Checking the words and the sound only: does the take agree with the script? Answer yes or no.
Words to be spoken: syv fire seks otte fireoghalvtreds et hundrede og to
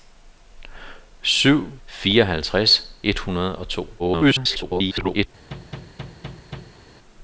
no